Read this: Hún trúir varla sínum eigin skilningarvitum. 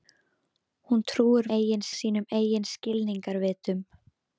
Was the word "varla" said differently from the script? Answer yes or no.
yes